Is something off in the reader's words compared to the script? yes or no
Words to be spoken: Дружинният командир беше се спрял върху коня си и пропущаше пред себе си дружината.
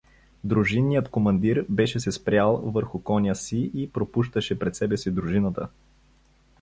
no